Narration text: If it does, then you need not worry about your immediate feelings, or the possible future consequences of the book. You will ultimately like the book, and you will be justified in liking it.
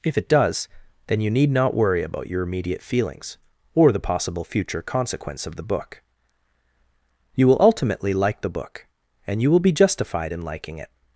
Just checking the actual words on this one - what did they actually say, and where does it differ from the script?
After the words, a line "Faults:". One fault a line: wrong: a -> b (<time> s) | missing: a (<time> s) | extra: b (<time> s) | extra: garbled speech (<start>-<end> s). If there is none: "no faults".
If it does, then you need not worry about your immediate feelings, or the possible future consequence of the book. You will ultimately like the book, and you will be justified in liking it.
Faults:
wrong: consequences -> consequence (4.8 s)